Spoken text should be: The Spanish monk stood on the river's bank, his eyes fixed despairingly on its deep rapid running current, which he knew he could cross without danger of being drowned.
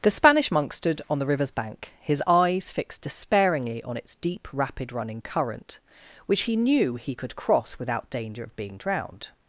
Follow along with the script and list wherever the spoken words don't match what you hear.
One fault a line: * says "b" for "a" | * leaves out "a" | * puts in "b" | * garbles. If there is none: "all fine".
all fine